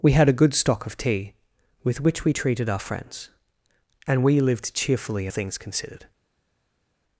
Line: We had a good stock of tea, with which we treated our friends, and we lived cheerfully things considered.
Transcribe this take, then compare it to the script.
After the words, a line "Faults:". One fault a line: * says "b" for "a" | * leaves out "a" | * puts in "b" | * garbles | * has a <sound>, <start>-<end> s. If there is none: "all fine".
We had a good stock of tea, with which we treated our friends, and we lived cheerfully things considered.
Faults:
all fine